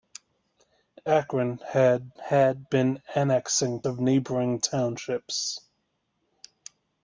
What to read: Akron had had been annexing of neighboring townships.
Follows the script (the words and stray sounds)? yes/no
yes